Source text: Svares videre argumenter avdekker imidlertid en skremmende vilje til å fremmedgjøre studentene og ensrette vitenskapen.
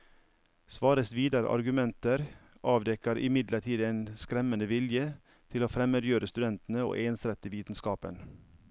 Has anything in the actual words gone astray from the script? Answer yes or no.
no